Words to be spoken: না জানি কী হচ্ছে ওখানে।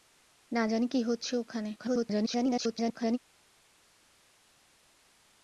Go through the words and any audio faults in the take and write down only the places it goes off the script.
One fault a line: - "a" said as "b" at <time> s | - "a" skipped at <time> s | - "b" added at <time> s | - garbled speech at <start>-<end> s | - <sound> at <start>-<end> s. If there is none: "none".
- garbled speech at 1.8-3.2 s